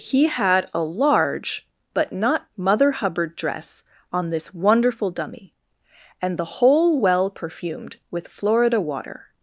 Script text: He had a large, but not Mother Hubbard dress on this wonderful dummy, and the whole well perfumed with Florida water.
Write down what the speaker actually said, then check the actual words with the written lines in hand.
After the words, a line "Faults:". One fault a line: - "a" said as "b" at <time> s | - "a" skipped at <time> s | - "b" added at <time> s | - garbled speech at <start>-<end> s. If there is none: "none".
He had a large, but not Mother Hubbard dress on this wonderful dummy, and the whole well perfumed with Florida water.
Faults:
none